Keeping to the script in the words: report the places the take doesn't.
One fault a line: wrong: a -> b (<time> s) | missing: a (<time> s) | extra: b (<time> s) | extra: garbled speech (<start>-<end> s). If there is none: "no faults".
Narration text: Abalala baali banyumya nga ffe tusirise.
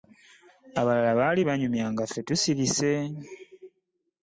no faults